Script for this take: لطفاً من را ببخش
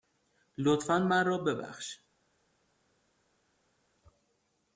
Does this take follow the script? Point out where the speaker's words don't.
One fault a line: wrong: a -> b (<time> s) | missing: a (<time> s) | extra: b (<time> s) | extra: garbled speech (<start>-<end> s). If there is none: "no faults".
no faults